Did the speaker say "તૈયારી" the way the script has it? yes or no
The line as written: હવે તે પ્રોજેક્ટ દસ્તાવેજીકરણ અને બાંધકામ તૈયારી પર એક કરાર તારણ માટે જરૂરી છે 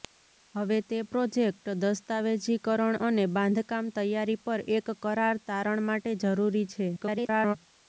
yes